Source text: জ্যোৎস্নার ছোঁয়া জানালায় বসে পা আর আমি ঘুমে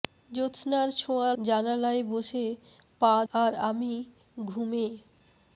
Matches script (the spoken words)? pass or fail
pass